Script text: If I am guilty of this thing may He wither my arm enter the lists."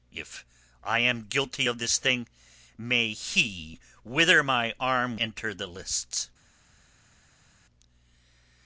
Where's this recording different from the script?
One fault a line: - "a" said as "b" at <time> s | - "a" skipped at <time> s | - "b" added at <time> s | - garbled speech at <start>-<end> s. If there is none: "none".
none